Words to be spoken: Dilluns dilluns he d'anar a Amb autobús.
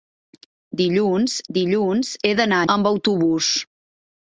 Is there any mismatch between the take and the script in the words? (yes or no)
no